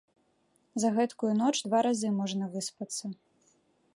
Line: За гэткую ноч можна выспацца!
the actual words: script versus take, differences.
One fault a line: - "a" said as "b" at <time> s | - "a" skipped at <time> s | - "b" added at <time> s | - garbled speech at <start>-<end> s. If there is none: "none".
- "два разы" added at 1.7 s